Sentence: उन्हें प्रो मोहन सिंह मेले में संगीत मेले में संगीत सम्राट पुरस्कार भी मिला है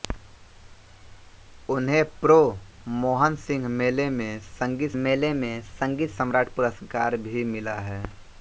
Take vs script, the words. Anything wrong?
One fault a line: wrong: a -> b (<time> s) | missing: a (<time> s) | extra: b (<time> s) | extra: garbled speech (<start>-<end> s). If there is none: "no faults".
no faults